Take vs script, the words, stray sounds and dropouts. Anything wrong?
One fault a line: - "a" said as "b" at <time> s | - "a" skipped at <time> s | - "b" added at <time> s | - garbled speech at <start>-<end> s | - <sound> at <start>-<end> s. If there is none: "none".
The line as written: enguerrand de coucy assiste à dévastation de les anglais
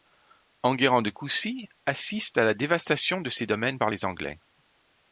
- "la" added at 2.4 s
- "ses domaines par" added at 3.3 s